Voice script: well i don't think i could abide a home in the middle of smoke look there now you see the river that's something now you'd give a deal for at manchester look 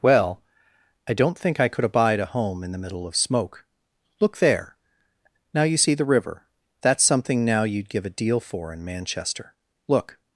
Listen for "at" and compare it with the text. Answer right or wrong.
wrong